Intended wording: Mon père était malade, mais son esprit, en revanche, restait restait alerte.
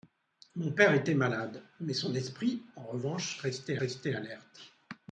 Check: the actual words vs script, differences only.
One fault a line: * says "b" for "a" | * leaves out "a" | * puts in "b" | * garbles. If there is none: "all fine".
all fine